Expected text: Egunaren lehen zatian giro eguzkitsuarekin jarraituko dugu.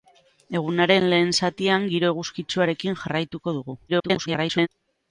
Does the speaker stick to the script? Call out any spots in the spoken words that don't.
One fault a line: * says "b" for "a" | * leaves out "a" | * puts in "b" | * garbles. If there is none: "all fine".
* garbles